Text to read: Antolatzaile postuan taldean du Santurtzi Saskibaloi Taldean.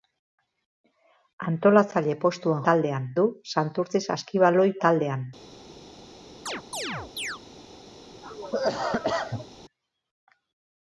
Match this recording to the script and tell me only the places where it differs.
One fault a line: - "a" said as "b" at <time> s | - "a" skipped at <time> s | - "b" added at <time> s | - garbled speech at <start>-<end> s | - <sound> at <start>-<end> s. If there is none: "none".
- chirp at 6.5-7.4 s
- cough at 8.2-9.5 s